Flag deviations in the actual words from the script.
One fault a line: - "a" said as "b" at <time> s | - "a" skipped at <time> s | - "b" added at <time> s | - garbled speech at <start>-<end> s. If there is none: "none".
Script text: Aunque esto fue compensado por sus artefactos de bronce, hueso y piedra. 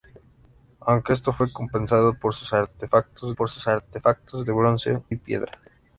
- "por sus artefactos" added at 3.3 s
- "hueso" skipped at 5.0 s